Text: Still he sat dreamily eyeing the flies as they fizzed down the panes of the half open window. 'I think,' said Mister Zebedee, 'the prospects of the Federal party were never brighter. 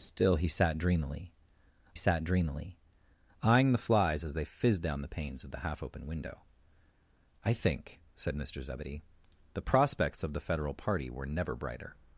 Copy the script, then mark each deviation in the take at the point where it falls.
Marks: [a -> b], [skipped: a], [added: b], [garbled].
Still he sat dreamily [added: sat dreamily] eyeing the flies as they fizzed down the panes of the half open window. 'I think,' said Mister Zebedee, 'the prospects of the Federal party were never brighter.